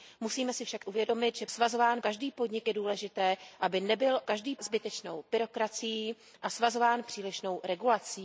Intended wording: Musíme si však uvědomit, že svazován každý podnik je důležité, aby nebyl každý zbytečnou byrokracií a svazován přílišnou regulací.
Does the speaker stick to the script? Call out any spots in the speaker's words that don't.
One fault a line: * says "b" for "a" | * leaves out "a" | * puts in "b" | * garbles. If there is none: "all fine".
all fine